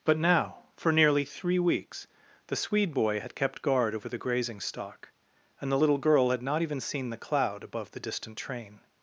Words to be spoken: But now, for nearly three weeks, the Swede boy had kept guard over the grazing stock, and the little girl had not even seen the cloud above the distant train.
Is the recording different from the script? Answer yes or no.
no